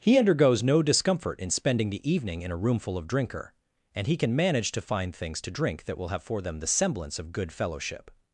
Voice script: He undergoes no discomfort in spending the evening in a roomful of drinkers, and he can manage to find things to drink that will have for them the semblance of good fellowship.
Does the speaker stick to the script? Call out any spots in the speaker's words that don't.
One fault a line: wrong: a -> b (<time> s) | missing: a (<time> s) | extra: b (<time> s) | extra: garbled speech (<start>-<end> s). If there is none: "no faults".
wrong: drinkers -> drinker (3.0 s)